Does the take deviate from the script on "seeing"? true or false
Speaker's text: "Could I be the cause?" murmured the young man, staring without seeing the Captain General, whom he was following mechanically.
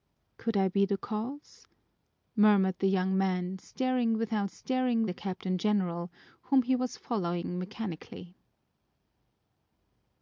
true